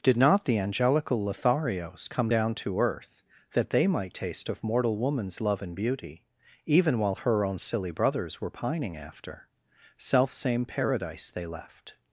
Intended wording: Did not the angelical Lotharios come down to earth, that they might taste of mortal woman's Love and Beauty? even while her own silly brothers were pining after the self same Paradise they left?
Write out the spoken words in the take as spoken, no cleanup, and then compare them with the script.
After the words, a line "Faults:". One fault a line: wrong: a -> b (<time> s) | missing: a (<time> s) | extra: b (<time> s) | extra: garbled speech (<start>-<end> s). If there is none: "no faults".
Did not the angelical Lotharios come down to earth, that they might taste of mortal woman's Love and Beauty? even while her own silly brothers were pining after self same Paradise they left?
Faults:
missing: the (9.5 s)